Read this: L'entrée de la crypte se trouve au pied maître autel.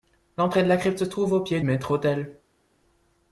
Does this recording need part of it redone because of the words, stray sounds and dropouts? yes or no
no